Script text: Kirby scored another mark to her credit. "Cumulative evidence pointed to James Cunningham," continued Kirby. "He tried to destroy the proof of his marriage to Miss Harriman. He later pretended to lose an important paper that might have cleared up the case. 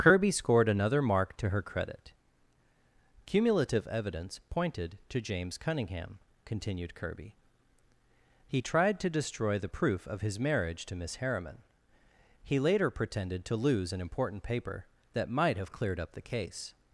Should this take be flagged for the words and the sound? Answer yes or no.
no